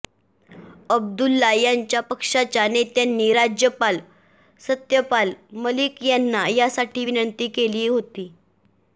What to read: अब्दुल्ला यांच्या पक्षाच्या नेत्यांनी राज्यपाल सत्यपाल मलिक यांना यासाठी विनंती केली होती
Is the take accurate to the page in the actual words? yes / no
yes